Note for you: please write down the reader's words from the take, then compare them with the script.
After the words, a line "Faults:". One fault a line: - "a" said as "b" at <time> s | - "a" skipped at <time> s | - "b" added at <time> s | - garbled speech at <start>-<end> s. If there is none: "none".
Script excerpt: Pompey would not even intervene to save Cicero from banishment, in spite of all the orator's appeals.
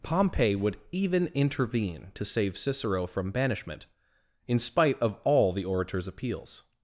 Pompey would even intervene to save Cicero from banishment, in spite of all the orator's appeals.
Faults:
- "not" skipped at 0.8 s